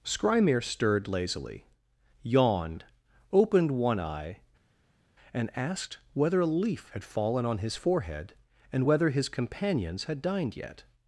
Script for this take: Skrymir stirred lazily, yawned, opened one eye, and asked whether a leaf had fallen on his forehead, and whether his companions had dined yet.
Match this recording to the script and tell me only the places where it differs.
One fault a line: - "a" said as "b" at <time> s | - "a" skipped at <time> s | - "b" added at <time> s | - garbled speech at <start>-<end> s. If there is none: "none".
none